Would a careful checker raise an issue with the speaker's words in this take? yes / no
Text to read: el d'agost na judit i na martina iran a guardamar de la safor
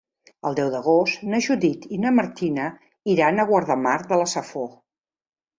yes